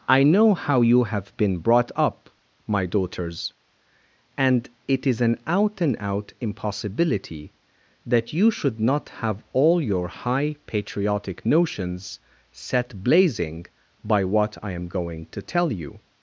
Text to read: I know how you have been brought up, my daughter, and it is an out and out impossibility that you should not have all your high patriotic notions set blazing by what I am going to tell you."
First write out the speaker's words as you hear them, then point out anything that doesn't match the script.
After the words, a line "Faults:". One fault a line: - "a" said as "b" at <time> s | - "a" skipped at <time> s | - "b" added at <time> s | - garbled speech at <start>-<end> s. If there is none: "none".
I know how you have been brought up, my daughters, and it is an out and out impossibility that you should not have all your high patriotic notions set blazing by what I am going to tell you."
Faults:
- "daughter" said as "daughters" at 2.9 s